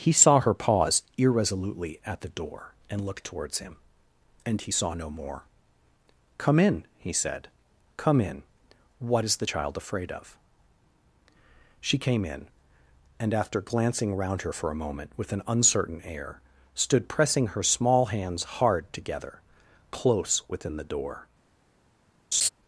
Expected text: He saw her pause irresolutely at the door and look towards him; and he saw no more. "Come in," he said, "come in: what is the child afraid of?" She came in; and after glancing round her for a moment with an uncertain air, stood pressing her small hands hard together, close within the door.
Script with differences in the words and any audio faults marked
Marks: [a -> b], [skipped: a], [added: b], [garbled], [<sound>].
He saw her pause irresolutely at the door and look towards him; and he saw no more. "Come in," he said, "come in: what is the child afraid of?" She came in; and after glancing round her for a moment with an uncertain air, stood pressing her small hands hard together, close within the door. [laugh]